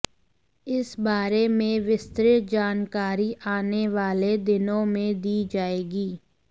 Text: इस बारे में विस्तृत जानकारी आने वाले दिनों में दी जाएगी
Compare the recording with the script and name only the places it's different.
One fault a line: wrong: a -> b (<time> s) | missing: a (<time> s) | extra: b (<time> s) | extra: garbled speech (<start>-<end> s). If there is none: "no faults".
no faults